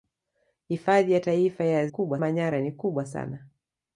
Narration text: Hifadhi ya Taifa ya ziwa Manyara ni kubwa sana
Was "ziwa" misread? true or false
true